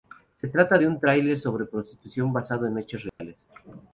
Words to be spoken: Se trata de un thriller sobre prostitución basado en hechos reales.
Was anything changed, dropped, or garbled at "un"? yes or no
no